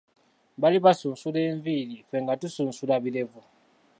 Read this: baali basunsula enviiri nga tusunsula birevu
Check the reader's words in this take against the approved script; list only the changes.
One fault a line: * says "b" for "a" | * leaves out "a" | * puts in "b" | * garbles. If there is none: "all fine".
* puts in "ffe"